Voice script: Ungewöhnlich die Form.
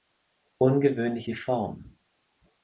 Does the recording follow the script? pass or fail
pass